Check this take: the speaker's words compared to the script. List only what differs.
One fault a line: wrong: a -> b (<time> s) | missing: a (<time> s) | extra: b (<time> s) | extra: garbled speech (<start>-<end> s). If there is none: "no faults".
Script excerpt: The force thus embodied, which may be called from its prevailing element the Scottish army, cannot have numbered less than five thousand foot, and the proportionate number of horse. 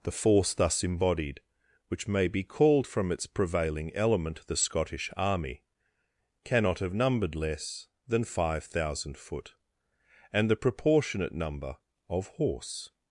no faults